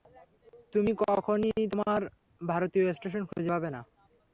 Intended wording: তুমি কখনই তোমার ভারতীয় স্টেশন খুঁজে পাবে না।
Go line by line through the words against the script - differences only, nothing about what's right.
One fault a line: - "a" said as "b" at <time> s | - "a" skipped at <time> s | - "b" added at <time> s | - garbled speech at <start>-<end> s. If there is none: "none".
none